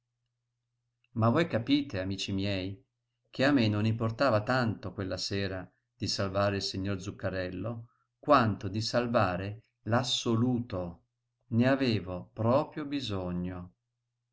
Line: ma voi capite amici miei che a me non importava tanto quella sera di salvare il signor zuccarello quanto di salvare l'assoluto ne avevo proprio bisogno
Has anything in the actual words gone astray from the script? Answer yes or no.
no